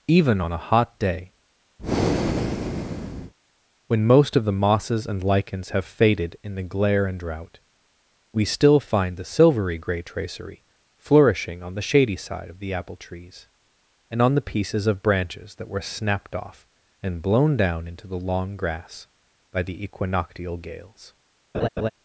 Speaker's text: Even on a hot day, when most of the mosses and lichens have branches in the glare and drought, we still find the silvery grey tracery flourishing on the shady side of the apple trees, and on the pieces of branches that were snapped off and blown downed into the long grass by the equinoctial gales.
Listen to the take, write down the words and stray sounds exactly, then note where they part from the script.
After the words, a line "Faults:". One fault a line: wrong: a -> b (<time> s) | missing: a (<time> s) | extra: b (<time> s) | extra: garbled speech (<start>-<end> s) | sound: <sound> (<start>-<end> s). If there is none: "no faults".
Even on a hot day, when most of the mosses and lichens have faded in the glare and drought, we still find the silvery grey tracery flourishing on the shady side of the apple trees, and on the pieces of branches that were snapped off and blown down into the long grass by the equinoctial gales.
Faults:
sound: breath (1.8-3.3 s)
wrong: branches -> faded (5.9 s)
wrong: downed -> down (17.6 s)
sound: laugh (21.5-21.9 s)